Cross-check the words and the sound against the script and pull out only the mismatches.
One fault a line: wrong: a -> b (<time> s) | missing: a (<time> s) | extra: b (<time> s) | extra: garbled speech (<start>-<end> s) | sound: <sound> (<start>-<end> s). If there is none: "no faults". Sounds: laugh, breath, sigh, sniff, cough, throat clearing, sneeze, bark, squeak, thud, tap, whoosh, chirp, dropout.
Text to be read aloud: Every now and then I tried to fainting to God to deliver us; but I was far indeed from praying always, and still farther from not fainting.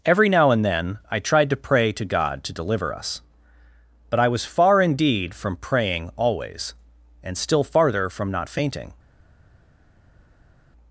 wrong: fainting -> pray (1.6 s)